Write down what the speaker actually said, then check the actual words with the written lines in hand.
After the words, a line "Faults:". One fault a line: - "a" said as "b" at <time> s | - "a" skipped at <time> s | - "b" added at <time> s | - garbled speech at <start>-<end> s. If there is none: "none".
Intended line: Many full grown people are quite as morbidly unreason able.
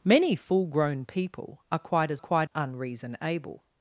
Many full grown people are quite as quite unreason able.
Faults:
- "morbidly" said as "quite" at 2.2 s